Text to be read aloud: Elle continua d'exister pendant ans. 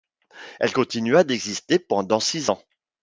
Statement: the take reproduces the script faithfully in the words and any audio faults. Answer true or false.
false